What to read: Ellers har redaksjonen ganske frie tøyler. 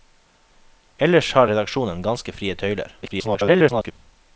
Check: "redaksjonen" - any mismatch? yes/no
no